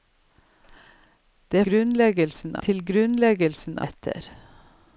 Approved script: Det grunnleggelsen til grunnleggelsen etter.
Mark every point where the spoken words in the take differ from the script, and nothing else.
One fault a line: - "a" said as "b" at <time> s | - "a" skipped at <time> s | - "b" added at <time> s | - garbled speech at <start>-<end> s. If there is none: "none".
none